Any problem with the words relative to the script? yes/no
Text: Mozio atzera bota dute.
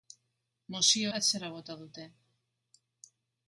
no